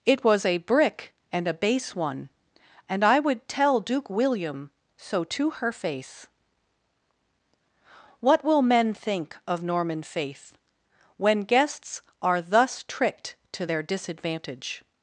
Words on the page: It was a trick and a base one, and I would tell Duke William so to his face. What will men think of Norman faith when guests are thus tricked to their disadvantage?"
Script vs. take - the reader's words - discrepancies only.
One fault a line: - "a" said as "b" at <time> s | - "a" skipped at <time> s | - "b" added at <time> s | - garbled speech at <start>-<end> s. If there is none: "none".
- "trick" said as "brick" at 0.6 s
- "his" said as "her" at 5.5 s